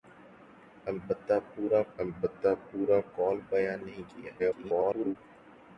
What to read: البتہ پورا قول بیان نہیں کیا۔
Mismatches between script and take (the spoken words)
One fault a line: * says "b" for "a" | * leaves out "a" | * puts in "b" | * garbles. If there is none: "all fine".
* puts in "البتہ پورا"
* garbles